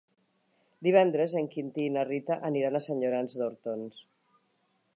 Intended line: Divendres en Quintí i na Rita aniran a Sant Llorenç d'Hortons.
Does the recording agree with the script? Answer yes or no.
yes